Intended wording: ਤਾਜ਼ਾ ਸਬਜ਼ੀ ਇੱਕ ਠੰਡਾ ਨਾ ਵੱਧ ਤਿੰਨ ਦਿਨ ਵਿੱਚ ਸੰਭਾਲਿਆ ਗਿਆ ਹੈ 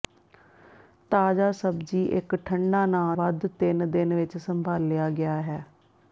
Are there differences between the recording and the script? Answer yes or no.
no